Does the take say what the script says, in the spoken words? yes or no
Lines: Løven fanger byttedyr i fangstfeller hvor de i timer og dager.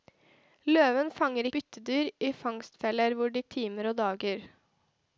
yes